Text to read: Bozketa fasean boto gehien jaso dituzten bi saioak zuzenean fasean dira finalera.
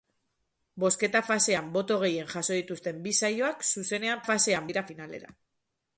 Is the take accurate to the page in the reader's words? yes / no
yes